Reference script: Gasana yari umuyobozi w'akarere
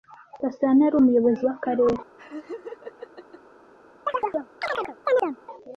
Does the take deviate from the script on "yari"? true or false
false